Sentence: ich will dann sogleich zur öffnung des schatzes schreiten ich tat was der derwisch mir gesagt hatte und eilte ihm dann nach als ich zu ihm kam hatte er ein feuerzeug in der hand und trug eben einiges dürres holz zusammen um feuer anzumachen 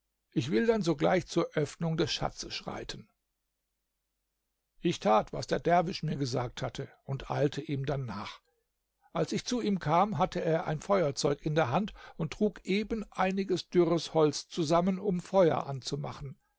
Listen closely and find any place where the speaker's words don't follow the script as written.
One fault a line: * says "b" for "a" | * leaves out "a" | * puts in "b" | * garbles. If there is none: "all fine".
all fine